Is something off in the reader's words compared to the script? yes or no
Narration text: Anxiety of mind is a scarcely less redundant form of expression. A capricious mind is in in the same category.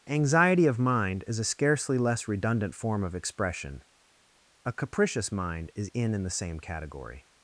no